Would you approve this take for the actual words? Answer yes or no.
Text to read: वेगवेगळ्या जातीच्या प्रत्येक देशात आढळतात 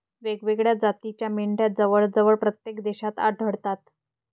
no